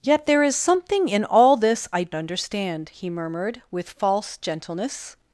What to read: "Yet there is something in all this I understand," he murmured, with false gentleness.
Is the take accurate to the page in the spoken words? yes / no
yes